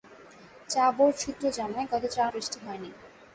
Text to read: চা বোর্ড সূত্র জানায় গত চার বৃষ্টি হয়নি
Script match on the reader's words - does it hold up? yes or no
yes